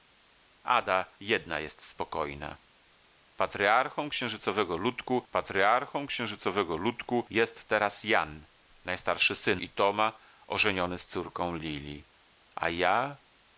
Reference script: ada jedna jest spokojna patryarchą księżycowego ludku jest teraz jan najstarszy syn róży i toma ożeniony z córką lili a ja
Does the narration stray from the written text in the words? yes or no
yes